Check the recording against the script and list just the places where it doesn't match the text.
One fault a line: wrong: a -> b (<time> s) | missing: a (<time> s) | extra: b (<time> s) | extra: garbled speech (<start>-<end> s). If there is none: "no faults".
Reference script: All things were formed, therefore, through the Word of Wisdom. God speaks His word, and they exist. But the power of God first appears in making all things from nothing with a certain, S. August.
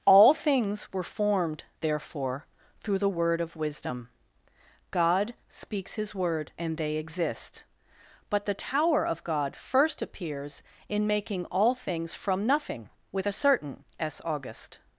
wrong: power -> tower (8.5 s)